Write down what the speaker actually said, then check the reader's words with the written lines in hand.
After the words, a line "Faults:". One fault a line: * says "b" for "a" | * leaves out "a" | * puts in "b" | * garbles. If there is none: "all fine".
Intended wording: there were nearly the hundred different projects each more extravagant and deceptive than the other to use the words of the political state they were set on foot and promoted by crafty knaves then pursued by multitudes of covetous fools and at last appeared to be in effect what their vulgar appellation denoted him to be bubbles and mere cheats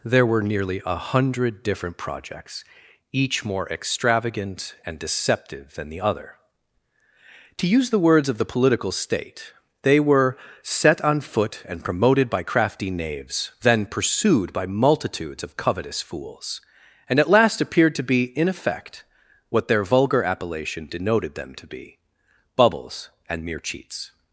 there were nearly a hundred different projects each more extravagant and deceptive than the other to use the words of the political state they were set on foot and promoted by crafty knaves then pursued by multitudes of covetous fools and at last appeared to be in effect what their vulgar appellation denoted them to be bubbles and mere cheats
Faults:
* says "a" for "the"
* says "them" for "him"